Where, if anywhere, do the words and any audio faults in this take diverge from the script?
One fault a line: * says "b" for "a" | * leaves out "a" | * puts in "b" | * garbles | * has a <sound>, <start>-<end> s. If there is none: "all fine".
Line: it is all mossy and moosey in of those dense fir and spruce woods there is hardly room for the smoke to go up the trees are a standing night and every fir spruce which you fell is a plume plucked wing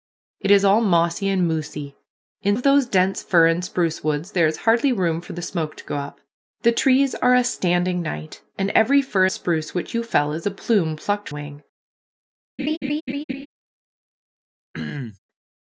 * has a laugh, 12.6-13.5 s
* has a throat clearing, 14.7-15.2 s